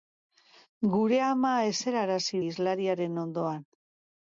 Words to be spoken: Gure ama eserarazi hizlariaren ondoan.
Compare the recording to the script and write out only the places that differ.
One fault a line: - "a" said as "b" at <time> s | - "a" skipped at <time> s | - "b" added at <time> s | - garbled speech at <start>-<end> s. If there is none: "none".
none